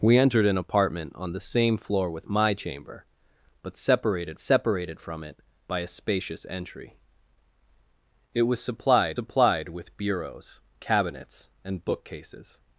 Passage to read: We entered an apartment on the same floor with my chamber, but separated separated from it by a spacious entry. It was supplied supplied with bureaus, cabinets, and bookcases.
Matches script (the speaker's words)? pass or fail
pass